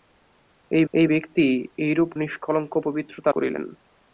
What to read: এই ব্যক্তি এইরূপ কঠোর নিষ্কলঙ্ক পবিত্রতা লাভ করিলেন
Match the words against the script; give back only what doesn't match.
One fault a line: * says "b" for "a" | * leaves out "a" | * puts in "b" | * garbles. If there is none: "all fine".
* puts in "এই"
* leaves out "কঠোর"
* leaves out "লাভ"